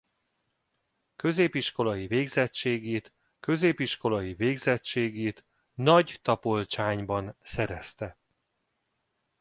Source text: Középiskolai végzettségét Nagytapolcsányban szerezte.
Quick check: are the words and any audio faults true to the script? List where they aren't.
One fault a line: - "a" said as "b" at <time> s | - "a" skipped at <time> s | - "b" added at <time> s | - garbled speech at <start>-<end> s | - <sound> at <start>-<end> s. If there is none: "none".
- "középiskolai végzettségét" added at 3.4 s